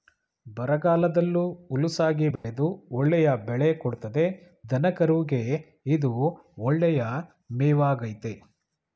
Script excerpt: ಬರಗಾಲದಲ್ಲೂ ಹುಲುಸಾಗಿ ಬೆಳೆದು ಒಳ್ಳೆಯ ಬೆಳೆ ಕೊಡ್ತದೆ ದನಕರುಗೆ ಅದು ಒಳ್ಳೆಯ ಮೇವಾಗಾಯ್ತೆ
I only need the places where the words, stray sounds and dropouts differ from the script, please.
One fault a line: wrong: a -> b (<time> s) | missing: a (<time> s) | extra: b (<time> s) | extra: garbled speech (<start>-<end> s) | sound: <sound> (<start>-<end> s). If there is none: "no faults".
sound: dropout (2.4-2.4 s)
wrong: ಅದು -> ಇದು (6.0 s)